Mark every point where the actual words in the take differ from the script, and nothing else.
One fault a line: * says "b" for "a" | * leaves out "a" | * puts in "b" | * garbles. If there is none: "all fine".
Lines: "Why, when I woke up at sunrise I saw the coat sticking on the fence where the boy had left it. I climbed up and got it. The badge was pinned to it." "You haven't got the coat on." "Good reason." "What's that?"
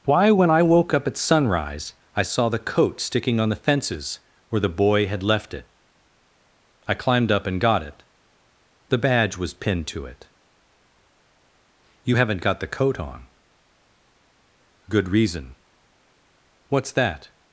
* says "fences" for "fence"